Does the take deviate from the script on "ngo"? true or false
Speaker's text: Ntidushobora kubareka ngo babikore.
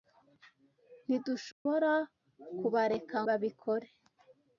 true